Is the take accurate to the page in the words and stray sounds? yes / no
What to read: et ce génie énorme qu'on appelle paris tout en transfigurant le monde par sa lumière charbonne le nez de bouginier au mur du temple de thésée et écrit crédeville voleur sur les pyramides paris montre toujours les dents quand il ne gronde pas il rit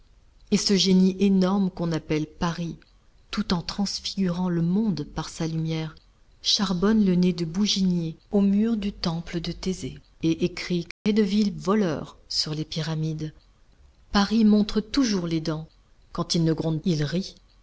no